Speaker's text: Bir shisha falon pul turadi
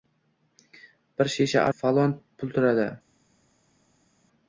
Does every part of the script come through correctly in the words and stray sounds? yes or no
yes